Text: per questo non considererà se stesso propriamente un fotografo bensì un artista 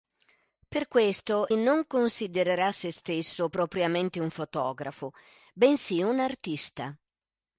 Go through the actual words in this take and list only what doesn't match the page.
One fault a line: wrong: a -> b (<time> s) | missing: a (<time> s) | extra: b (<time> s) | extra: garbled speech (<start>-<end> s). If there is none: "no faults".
no faults